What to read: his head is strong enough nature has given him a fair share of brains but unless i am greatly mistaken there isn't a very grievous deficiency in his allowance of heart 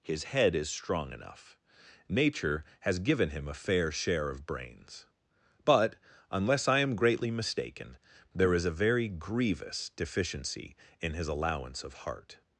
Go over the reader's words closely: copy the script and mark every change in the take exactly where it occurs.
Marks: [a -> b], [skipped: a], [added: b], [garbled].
his head is strong enough nature has given him a fair share of brains but unless i am greatly mistaken there [isn't -> is] a very grievous deficiency in his allowance of heart